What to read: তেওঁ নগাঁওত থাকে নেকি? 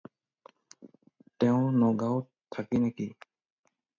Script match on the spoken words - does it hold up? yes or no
yes